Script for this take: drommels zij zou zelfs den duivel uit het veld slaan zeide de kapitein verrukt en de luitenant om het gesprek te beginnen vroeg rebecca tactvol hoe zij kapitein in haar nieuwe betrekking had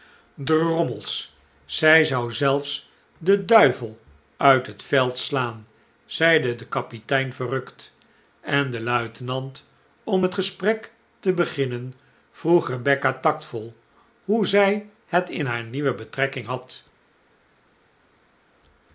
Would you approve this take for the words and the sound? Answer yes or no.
no